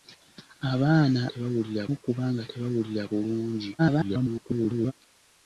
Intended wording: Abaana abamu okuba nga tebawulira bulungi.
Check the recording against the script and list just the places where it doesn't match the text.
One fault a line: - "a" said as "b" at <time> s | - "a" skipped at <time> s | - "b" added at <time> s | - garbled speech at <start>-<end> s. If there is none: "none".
- "abamu" said as "tebawulira" at 1.3 s
- garbled speech at 3.8-4.9 s